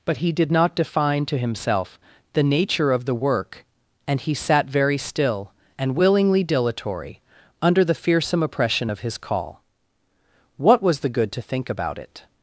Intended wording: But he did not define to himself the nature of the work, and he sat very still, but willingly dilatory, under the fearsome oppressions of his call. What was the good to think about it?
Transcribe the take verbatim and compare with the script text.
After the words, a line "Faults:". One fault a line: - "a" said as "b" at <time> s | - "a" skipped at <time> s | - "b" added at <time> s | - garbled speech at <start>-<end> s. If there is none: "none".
But he did not define to himself the nature of the work, and he sat very still, and willingly dilatory, under the fearsome oppression of his call. What was the good to think about it?
Faults:
- "but" said as "and" at 5.8 s
- "oppressions" said as "oppression" at 8.4 s